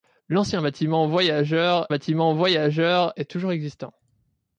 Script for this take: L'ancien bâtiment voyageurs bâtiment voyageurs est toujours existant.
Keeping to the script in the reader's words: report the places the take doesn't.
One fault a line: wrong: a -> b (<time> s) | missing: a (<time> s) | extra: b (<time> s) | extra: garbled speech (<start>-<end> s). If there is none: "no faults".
no faults